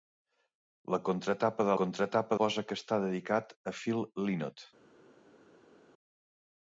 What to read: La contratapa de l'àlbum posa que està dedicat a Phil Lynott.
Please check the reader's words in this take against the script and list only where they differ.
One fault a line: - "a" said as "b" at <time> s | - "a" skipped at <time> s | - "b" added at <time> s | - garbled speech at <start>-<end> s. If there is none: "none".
- "l'àlbum" said as "contratapa" at 1.8 s